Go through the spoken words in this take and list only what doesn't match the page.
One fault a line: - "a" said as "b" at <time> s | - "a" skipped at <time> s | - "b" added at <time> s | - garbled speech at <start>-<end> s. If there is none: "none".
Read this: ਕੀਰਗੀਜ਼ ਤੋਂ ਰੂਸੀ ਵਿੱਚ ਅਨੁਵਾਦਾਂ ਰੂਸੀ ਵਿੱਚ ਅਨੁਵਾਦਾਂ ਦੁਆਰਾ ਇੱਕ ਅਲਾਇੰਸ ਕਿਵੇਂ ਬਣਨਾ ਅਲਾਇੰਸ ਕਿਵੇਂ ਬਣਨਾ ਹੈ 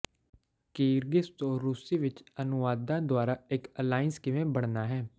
- "ਰੂਸੀ ਵਿੱਚ ਅਨੁਵਾਦਾਂ" skipped at 3.0 s
- "ਅਲਾਇੰਸ ਕਿਵੇਂ ਬਣਨਾ" skipped at 4.9 s